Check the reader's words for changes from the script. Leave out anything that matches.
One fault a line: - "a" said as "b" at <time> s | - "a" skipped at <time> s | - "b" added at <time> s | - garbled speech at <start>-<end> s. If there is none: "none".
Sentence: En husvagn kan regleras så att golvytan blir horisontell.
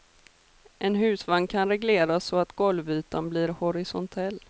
none